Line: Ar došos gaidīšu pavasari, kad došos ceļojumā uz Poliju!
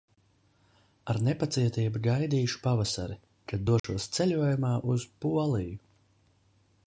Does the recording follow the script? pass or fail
fail